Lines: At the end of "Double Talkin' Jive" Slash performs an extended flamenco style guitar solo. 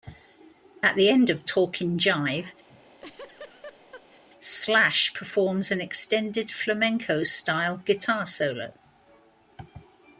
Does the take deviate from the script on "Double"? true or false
true